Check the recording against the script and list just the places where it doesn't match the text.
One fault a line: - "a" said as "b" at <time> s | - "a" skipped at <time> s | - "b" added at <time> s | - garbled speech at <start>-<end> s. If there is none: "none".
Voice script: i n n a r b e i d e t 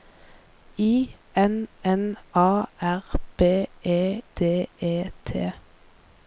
- "i" skipped at 4.2 s